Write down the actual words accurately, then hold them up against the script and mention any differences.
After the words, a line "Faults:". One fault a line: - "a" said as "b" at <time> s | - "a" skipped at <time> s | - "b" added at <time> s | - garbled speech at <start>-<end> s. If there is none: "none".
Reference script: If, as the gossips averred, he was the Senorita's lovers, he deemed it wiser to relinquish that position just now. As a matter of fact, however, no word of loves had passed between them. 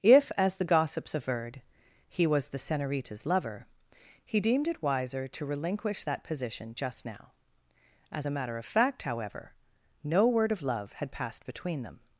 If, as the gossips averred, he was the Senorita's lover, he deemed it wiser to relinquish that position just now. As a matter of fact, however, no word of love had passed between them.
Faults:
- "lovers" said as "lover" at 3.2 s
- "loves" said as "love" at 10.6 s